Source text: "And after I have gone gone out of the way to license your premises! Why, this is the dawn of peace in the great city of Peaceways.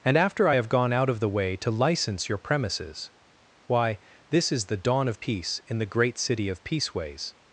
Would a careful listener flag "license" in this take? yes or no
no